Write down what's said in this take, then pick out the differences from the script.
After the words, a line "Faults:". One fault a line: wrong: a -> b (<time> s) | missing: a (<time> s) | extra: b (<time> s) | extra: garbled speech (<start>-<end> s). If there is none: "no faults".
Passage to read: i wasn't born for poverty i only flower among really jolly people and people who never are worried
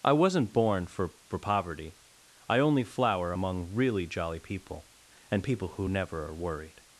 i wasn't born for for poverty i only flower among really jolly people and people who never are worried
Faults:
extra: for (1.3 s)